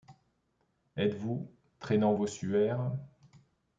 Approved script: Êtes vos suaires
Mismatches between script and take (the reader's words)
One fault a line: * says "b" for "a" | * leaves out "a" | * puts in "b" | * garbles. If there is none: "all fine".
* puts in "vous traînant"